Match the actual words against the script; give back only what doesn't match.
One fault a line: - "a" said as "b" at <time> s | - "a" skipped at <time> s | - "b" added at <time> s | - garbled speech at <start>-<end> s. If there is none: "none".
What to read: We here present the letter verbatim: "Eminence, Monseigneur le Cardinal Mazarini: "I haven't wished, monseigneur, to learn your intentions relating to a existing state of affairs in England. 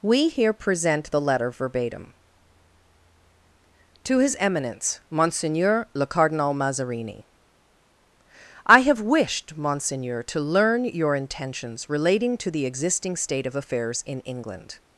- "To his" added at 4.0 s
- "haven't" said as "have" at 8.8 s
- "a" said as "the" at 12.5 s